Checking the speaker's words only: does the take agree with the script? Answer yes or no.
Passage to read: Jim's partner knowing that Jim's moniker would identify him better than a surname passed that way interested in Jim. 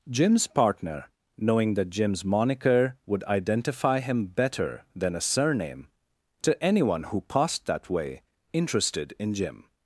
no